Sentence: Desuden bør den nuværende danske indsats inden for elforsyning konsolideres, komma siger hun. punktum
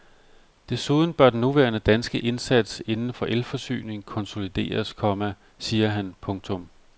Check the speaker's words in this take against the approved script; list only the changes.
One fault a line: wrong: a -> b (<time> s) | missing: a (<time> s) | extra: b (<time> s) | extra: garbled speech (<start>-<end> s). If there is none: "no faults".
wrong: hun -> han (5.9 s)